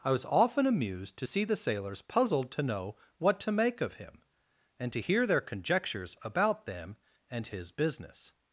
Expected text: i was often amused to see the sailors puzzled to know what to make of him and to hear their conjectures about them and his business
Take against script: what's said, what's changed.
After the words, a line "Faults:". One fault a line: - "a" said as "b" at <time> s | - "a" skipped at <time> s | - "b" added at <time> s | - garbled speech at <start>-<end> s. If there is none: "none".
i was often amused to see the sailors puzzled to know what to make of him and to hear their conjectures about them and his business
Faults:
none